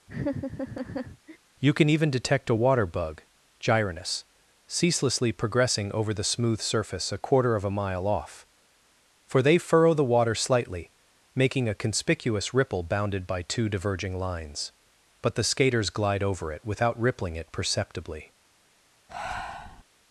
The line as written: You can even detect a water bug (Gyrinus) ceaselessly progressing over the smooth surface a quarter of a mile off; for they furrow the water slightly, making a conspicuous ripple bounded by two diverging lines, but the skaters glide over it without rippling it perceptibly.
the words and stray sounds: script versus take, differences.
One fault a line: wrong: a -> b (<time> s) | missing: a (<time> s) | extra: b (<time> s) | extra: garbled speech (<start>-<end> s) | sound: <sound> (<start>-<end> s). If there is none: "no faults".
sound: laugh (0.1-1.4 s)
sound: breath (19.1-19.8 s)